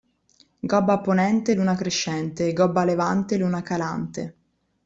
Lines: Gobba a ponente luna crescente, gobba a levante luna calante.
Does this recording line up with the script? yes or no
yes